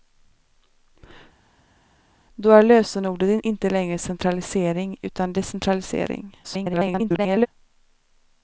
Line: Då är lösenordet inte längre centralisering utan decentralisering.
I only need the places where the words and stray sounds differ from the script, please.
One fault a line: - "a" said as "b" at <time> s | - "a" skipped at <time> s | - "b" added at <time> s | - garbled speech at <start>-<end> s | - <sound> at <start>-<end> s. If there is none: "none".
- garbled speech at 6.4-7.5 s